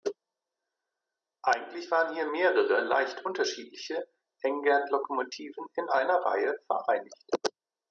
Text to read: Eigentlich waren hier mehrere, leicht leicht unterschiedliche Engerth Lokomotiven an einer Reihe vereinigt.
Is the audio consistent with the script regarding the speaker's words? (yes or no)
no